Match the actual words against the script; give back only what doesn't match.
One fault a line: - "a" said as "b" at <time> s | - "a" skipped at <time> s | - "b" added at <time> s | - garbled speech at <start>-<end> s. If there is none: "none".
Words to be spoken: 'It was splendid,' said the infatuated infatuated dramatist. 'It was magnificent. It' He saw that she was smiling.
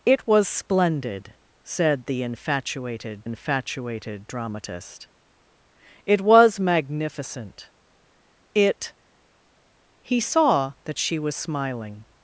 none